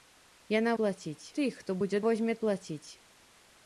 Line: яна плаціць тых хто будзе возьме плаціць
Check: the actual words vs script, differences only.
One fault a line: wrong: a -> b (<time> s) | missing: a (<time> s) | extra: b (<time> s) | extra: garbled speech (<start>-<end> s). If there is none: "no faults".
no faults